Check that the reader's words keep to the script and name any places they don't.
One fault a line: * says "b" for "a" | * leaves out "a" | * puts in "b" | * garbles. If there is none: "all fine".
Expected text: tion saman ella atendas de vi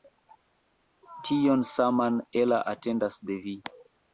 all fine